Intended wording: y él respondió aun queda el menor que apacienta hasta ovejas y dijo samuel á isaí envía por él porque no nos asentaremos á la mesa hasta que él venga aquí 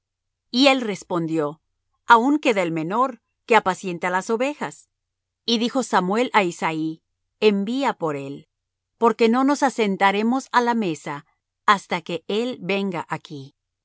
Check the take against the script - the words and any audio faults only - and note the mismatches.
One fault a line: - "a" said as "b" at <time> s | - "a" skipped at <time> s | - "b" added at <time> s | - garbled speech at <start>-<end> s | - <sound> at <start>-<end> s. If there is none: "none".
- "hasta" said as "las" at 4.1 s